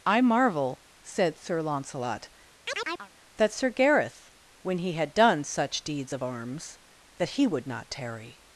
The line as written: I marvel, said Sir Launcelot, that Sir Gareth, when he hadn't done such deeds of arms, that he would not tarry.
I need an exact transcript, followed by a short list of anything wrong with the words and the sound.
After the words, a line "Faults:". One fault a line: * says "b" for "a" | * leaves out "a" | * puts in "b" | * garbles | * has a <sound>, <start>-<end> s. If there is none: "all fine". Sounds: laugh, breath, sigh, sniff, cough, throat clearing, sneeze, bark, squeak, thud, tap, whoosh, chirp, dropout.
I marvel, said Sir Launcelot, that Sir Gareth, when he had done such deeds of arms, that he would not tarry.
Faults:
* has a chirp, 2.7-3.1 s
* says "had" for "hadn't"